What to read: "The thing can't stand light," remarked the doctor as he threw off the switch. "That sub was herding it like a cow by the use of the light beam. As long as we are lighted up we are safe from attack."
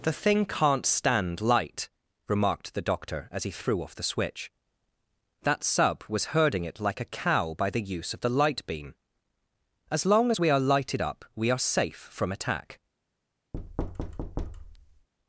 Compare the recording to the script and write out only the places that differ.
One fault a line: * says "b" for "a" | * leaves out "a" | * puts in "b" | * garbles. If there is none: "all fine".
all fine